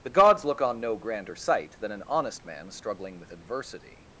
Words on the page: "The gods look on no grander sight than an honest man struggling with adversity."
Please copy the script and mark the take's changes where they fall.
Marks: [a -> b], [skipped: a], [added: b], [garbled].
"The gods look on no grander sight than an honest man struggling with adversity."